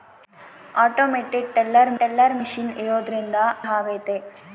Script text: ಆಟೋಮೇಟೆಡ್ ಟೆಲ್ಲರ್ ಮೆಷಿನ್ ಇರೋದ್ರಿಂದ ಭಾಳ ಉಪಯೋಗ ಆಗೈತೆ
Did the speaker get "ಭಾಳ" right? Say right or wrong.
wrong